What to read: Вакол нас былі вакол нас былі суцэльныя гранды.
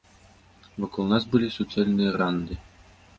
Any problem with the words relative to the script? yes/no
yes